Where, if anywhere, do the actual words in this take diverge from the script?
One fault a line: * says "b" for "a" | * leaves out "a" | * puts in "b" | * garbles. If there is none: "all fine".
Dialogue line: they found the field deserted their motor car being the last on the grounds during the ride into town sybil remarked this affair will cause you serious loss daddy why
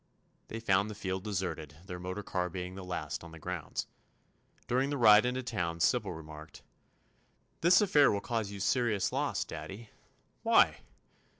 all fine